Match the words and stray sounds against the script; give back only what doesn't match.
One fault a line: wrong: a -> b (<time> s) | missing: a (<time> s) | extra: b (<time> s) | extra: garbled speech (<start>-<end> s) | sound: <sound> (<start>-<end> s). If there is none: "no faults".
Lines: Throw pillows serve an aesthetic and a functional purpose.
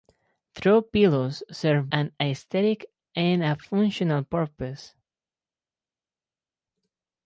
no faults